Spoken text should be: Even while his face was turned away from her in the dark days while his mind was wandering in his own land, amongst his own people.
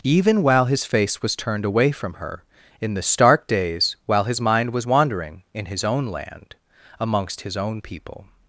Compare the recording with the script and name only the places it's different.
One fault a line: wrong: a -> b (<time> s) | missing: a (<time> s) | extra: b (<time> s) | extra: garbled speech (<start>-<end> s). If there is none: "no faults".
wrong: dark -> stark (3.0 s)